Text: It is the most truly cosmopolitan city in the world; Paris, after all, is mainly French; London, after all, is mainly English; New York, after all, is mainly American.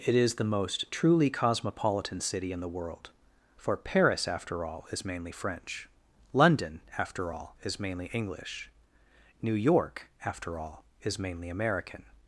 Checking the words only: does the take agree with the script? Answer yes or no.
no